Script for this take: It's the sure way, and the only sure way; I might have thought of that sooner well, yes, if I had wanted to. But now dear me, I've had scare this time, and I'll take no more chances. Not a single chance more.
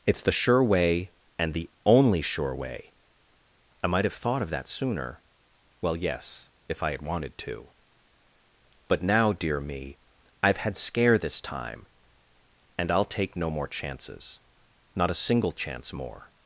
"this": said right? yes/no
yes